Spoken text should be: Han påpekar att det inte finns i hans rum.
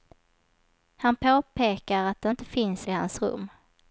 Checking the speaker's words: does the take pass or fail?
pass